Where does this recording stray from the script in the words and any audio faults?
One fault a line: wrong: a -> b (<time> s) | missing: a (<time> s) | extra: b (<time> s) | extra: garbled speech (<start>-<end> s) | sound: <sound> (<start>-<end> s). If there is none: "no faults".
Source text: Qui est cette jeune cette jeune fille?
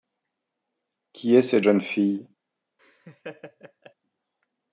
missing: cette jeune (1.8 s)
sound: laugh (2.8-3.9 s)